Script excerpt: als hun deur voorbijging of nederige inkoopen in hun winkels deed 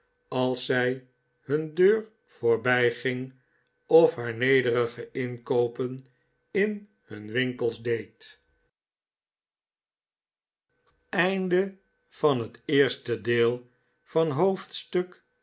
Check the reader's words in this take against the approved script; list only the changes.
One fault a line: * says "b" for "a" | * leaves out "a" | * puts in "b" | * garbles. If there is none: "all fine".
* puts in "zij"
* puts in "haar"